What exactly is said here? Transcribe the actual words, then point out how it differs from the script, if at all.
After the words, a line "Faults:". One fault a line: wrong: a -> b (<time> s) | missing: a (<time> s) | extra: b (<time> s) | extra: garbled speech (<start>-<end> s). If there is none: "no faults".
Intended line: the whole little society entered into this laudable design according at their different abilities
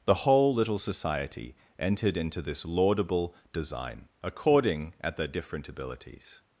the whole little society entered into this laudable design according at their different abilities
Faults:
no faults